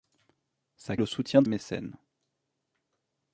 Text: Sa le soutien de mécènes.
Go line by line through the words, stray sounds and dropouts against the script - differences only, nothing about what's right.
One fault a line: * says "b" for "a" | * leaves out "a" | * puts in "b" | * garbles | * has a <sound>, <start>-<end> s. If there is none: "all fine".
all fine